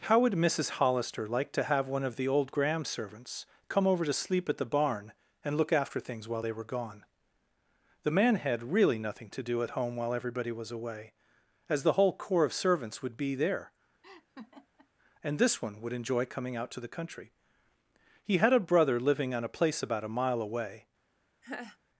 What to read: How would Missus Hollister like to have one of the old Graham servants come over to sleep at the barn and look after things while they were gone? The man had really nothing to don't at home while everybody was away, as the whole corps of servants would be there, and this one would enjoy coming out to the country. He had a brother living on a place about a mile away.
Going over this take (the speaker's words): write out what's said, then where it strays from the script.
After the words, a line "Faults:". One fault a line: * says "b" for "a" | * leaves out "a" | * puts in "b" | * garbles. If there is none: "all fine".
How would Missus Hollister like to have one of the old Graham servants come over to sleep at the barn and look after things while they were gone? The man had really nothing to do at home while everybody was away, as the whole corps of servants would be there, and this one would enjoy coming out to the country. He had a brother living on a place about a mile away.
Faults:
* says "do" for "don't"